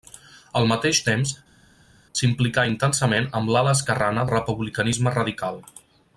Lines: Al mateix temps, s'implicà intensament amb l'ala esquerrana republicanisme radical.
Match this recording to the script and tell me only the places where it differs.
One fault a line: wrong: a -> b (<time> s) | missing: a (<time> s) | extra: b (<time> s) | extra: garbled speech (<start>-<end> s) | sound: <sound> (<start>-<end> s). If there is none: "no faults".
no faults